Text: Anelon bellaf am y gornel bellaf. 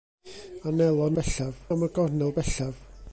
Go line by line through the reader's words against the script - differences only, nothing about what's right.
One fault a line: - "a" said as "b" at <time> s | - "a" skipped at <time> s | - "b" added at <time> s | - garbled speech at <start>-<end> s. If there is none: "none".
none